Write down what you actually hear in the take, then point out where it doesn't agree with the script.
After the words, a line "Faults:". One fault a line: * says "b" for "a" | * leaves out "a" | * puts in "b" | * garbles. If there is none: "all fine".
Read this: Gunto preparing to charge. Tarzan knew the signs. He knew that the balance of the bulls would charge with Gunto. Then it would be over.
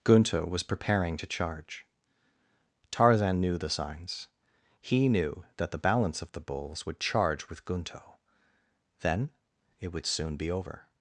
Gunto was preparing to charge. Tarzan knew the signs. He knew that the balance of the bulls would charge with Gunto. Then it would soon be over.
Faults:
* puts in "was"
* puts in "soon"